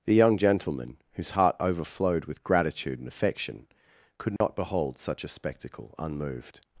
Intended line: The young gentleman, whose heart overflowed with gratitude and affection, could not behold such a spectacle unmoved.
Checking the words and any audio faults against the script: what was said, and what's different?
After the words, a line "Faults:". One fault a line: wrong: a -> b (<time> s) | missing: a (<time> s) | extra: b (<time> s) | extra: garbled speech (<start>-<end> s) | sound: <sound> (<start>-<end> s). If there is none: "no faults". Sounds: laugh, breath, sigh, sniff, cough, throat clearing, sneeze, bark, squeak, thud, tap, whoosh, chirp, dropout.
The young gentleman, whose heart overflowed with gratitude and affection, could not behold such a spectacle unmoved.
Faults:
sound: dropout (4.4-4.4 s)